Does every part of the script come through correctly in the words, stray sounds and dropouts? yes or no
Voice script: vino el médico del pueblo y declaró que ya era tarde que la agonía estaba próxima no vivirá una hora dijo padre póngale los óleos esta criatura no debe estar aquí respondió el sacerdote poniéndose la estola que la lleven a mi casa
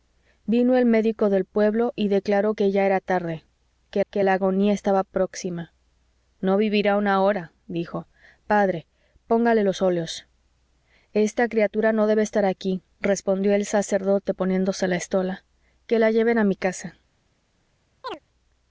no